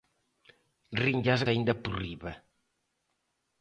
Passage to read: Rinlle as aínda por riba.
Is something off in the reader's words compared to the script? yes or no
no